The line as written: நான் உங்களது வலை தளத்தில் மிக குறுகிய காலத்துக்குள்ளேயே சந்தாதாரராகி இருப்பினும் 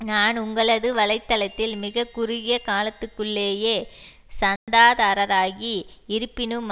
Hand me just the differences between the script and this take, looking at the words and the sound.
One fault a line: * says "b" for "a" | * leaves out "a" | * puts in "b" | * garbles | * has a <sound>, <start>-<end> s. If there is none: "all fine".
* has a dropout, 4.6-4.7 s